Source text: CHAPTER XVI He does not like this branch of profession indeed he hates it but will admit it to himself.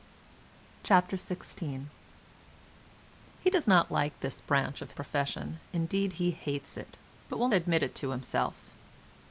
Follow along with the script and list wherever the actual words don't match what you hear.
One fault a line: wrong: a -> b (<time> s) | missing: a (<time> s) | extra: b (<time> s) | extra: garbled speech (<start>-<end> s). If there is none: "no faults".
no faults